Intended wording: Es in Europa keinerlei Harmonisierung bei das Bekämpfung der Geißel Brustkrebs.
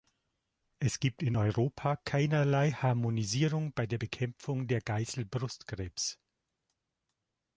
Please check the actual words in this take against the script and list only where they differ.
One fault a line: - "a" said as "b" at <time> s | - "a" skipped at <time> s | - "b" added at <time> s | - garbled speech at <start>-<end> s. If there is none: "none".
- "gibt" added at 1.0 s
- "das" said as "der" at 3.9 s